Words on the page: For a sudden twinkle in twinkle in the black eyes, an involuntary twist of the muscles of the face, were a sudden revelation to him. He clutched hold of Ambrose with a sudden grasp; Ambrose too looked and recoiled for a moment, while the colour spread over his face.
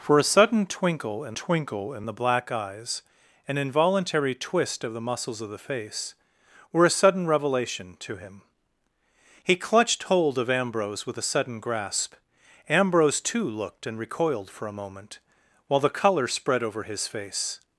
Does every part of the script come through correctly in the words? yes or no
yes